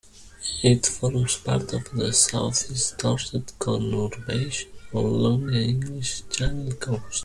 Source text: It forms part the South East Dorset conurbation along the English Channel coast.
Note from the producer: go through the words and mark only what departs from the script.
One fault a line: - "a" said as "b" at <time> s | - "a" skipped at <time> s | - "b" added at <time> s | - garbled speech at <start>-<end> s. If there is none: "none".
- "of" added at 1.7 s